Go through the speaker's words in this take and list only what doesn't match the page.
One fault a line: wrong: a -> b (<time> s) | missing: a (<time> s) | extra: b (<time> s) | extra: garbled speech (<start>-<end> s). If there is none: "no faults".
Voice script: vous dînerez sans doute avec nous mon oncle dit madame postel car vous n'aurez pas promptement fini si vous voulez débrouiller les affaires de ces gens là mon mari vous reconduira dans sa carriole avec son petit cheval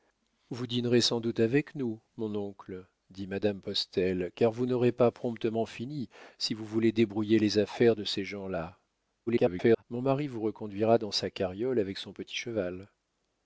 extra: garbled speech (9.3-9.8 s)